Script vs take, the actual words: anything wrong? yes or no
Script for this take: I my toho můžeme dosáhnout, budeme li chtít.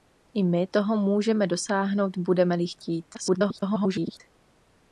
yes